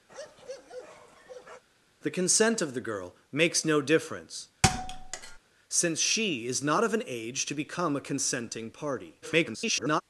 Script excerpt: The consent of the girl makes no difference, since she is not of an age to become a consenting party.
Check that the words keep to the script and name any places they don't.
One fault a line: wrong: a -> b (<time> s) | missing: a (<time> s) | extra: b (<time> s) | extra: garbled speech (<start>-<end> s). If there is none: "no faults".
extra: garbled speech (9.2-10.0 s)